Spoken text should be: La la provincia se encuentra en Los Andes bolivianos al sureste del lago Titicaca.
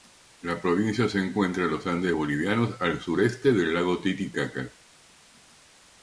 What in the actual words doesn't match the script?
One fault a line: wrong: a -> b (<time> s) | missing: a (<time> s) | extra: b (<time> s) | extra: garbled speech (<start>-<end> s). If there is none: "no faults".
missing: la (0.6 s)